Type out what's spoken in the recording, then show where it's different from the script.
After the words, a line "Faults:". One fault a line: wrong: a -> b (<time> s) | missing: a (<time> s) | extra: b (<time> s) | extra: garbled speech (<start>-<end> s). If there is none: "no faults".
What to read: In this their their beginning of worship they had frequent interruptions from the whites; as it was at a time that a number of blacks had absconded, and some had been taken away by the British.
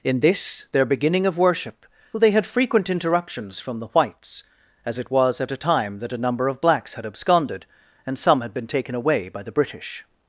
In this their beginning of worship they had frequent interruptions from the whites; as it was at a time that a number of blacks had absconded, and some had been taken away by the British.
Faults:
missing: their (0.8 s)